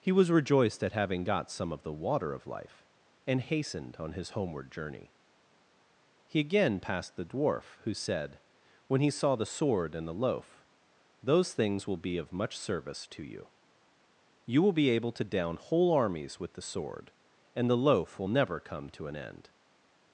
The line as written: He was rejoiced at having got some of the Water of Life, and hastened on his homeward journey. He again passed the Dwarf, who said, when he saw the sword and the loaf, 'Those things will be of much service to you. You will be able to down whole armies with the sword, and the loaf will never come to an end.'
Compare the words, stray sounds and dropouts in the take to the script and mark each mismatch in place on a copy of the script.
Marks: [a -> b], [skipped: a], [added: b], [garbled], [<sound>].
He was rejoiced at having got some of the Water of Life, and hastened on his homeward journey. He again passed the Dwarf, who said, when he saw the sword and the loaf, 'Those things will be of much service to you. You will be able to down whole armies with the sword, and the loaf will never come to an end.'